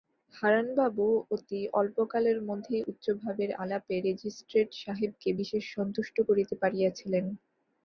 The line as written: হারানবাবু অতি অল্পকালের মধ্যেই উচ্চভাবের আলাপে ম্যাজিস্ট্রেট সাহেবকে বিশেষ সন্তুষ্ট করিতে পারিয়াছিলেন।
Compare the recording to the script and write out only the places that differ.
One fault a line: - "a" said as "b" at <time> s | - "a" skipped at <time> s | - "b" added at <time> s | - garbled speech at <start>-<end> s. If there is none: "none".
none